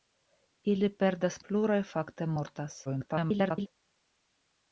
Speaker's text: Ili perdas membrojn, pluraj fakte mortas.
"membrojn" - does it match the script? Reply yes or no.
no